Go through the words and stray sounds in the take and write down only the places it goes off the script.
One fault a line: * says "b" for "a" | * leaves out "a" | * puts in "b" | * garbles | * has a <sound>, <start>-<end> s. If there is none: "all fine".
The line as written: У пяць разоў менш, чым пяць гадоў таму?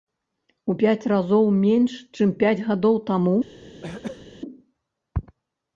* has a throat clearing, 3.8-4.3 s